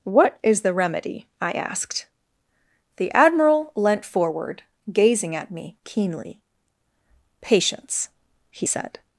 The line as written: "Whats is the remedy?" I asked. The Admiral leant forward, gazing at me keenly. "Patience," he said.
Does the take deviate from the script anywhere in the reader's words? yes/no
yes